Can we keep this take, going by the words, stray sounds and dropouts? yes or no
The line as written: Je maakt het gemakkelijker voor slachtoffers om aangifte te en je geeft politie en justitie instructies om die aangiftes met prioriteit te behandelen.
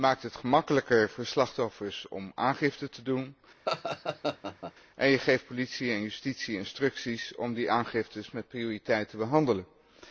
no